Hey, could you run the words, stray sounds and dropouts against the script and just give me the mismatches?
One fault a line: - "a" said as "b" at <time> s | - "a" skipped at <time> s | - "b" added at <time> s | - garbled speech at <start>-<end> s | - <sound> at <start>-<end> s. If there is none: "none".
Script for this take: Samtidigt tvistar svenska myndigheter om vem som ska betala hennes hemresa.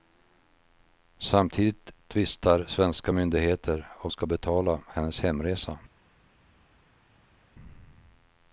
- "vem som" skipped at 4.1 s